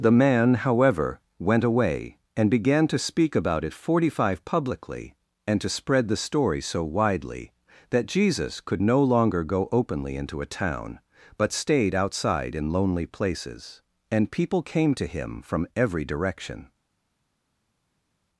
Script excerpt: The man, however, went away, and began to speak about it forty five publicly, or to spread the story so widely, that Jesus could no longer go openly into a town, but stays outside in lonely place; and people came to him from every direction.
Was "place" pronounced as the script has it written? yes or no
no